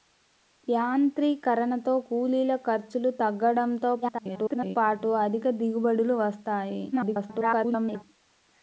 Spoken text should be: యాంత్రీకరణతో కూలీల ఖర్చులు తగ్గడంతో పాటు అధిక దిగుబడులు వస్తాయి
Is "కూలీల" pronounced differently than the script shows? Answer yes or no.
no